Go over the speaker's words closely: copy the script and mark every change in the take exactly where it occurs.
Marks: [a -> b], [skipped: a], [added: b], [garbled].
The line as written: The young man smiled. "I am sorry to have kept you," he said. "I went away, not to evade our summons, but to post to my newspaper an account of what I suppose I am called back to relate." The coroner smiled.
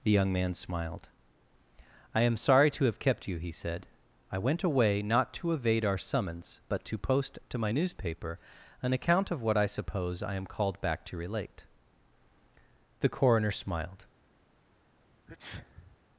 The young man smiled. "I am sorry to have kept you," he said. "I went away, not to evade our summons, but to post to my newspaper an account of what I suppose I am called back to relate." The coroner smiled.